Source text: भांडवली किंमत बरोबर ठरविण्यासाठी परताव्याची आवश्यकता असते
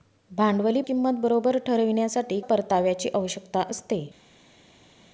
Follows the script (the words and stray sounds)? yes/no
yes